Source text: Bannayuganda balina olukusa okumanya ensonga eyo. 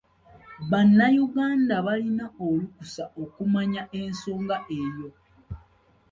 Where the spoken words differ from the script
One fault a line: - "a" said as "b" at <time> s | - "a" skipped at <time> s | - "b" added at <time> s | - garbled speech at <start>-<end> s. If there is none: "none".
none